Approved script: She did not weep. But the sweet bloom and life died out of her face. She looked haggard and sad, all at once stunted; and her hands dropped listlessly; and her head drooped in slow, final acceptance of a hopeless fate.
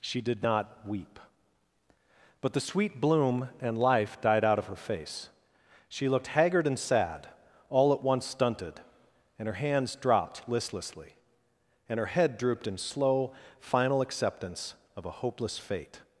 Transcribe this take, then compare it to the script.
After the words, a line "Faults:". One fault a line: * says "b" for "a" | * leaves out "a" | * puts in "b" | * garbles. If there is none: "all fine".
She did not weep. But the sweet bloom and life died out of her face. She looked haggard and sad, all at once stunted; and her hands dropped listlessly; and her head drooped in slow, final acceptance of a hopeless fate.
Faults:
all fine